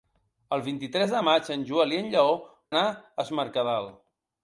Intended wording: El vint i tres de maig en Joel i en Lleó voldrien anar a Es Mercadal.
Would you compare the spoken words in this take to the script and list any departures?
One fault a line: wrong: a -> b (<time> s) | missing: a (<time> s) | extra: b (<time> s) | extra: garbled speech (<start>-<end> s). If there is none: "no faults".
missing: voldrien (2.3 s)